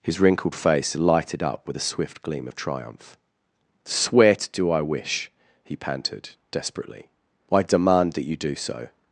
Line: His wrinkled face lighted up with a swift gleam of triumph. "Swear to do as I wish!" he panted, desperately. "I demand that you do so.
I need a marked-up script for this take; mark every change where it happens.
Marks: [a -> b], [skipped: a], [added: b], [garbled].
His wrinkled face lighted up with a swift gleam of triumph. "Swear to do [skipped: as] I wish!" he panted, desperately. "I demand that you do so.